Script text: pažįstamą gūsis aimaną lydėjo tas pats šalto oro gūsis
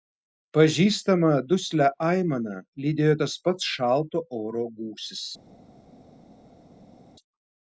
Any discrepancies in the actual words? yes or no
yes